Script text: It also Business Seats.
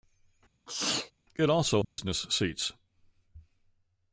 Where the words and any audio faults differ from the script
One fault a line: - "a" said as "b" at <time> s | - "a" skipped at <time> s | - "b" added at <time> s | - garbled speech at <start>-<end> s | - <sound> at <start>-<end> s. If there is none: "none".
- sneeze at 0.7-1.1 s
- dropout at 1.8-2.0 s